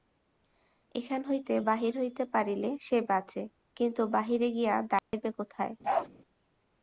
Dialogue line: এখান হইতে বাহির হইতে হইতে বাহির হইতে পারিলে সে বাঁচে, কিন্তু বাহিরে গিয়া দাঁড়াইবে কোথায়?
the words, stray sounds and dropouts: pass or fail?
fail